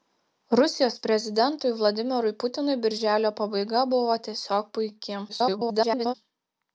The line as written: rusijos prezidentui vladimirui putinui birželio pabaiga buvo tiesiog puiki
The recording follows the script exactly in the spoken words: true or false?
false